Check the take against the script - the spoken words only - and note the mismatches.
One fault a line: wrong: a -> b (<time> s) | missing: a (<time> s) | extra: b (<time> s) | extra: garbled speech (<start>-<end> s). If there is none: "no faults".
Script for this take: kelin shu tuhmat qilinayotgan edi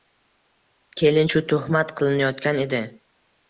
no faults